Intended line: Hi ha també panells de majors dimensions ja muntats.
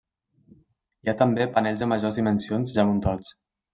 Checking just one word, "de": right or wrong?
right